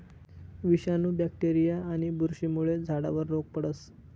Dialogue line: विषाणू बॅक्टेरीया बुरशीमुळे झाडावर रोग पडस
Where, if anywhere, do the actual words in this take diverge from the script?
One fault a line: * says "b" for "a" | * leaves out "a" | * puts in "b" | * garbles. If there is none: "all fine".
* puts in "आणि"